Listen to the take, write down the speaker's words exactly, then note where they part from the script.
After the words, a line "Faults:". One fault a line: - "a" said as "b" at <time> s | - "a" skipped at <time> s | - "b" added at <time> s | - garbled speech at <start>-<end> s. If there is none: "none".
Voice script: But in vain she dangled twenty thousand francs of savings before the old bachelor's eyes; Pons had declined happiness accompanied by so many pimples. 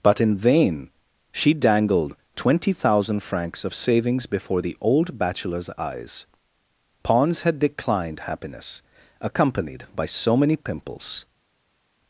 But in vain she dangled twenty thousand francs of savings before the old bachelor's eyes; Pons had declined happiness accompanied by so many pimples.
Faults:
none